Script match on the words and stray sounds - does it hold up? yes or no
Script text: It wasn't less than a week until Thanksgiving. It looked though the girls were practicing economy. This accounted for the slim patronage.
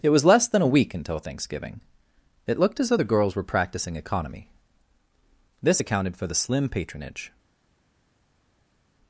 no